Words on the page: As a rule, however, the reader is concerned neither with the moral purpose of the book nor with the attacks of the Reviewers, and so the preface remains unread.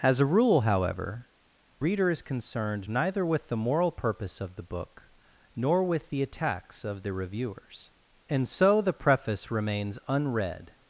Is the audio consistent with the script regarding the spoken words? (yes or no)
no